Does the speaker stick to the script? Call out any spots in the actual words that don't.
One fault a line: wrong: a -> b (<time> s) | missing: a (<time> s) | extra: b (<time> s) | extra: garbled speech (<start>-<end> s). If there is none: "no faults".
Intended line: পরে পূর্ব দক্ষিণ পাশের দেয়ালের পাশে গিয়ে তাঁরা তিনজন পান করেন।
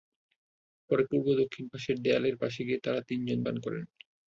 no faults